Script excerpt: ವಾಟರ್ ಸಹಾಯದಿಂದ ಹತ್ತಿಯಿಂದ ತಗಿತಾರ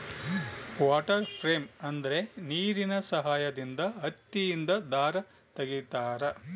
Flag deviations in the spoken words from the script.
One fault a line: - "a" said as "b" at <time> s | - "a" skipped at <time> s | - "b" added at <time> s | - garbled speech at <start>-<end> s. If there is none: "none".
- "ಫ್ರೇಮ್ ಅಂದ್ರೆ ನೀರಿನ" added at 1.3 s
- "ದಾರ" added at 4.9 s